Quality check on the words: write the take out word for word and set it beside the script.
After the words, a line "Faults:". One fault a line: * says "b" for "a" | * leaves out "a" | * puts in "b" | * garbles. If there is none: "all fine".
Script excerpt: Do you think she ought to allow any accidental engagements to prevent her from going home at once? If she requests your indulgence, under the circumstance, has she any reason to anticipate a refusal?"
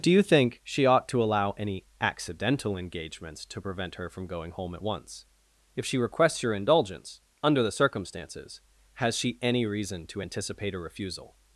Do you think she ought to allow any accidental engagements to prevent her from going home at once? If she requests your indulgence, under the circumstances, has she any reason to anticipate a refusal?"
Faults:
* says "circumstances" for "circumstance"